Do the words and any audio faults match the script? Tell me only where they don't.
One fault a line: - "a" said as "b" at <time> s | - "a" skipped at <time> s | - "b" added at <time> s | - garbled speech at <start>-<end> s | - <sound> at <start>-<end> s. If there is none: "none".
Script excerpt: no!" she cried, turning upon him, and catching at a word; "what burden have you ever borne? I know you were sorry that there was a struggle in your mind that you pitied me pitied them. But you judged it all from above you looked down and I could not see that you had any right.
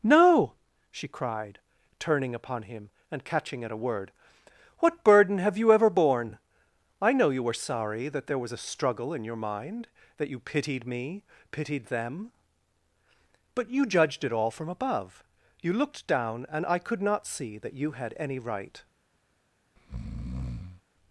- breath at 19.8-20.8 s